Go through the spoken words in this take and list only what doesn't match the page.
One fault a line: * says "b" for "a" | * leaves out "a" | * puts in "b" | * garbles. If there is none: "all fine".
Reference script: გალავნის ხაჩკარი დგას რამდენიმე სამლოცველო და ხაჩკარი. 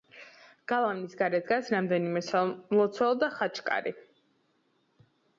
* says "გარეთ" for "ხაჩკარი"